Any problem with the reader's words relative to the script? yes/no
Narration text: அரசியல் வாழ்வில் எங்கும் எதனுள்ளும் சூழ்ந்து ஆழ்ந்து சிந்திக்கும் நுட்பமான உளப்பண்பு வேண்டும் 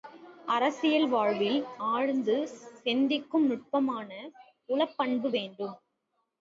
yes